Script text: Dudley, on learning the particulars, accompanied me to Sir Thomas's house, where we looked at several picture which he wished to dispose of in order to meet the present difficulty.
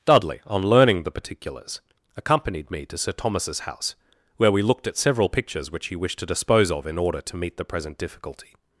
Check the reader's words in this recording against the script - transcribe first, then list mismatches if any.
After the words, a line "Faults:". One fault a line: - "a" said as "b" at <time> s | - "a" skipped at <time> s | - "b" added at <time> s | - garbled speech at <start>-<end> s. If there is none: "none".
Dudley, on learning the particulars, accompanied me to Sir Thomas's house, where we looked at several pictures which he wished to dispose of in order to meet the present difficulty.
Faults:
- "picture" said as "pictures" at 5.3 s